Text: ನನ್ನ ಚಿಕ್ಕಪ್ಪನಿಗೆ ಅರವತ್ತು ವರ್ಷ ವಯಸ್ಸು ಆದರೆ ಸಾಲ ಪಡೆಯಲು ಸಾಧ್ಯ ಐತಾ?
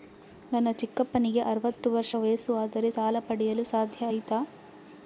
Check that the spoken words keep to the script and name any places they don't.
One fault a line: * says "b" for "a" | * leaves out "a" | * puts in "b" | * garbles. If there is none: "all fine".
all fine